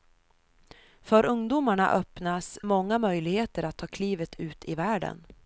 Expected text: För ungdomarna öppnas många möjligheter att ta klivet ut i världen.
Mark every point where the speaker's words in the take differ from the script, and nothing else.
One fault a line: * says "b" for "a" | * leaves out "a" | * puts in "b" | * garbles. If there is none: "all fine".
all fine